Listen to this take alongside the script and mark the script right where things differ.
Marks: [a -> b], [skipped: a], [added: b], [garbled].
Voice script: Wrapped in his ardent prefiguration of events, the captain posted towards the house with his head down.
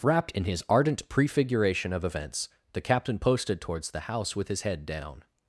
Wrapped in his ardent prefiguration of events, the captain posted towards the house with his head down.